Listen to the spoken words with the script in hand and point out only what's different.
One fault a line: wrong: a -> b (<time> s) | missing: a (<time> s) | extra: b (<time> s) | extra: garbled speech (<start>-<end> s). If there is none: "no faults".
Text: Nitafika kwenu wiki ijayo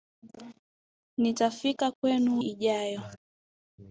missing: wiki (2.4 s)